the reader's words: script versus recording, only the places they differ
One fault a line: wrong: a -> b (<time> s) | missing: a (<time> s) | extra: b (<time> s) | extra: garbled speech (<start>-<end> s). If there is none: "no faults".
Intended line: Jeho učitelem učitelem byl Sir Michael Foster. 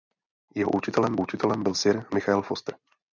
no faults